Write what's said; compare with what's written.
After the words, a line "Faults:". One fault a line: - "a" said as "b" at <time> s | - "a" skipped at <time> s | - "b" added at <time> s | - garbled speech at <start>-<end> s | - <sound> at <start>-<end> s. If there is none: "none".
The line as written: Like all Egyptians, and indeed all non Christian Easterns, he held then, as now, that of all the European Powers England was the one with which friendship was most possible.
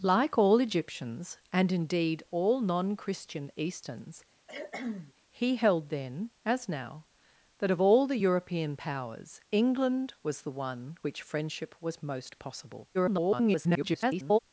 Like all Egyptians, and indeed all non Christian Easterns, he held then, as now, that of all the European Powers England was the one which friendship was most possible. [garbled]
Faults:
- cough at 4.5-5.1 s
- "with" skipped at 11.0 s
- garbled speech at 12.9-14.4 s